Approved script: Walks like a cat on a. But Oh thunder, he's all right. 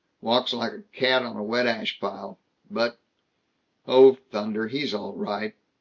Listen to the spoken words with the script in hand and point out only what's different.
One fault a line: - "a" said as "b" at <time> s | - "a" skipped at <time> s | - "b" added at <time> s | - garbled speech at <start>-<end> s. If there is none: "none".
- "wet ash pile" added at 1.4 s